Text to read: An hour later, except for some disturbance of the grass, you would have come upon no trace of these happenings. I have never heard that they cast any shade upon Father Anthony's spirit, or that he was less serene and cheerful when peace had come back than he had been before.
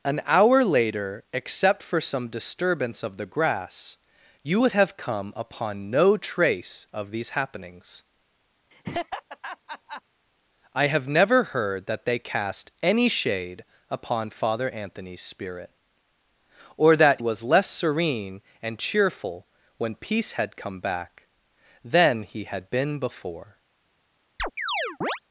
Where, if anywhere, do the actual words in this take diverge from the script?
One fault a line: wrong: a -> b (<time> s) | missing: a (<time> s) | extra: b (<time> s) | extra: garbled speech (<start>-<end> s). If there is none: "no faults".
missing: he (17.2 s)